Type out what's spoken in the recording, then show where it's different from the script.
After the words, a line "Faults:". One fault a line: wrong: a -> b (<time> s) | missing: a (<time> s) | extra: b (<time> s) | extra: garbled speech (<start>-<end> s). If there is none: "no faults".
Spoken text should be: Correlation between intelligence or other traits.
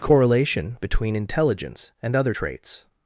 Correlation between intelligence and other traits.
Faults:
wrong: or -> and (2.0 s)